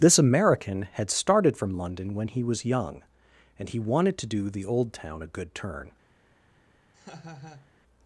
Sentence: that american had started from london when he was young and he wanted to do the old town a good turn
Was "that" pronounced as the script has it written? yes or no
no